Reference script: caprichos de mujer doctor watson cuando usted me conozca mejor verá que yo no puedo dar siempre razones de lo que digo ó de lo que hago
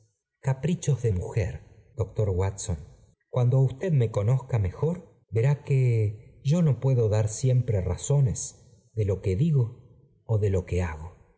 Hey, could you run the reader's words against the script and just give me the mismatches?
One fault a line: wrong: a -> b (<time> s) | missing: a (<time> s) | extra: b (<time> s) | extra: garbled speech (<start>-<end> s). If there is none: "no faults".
no faults